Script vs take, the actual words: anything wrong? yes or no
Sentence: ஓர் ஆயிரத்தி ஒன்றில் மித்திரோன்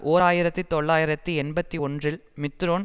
yes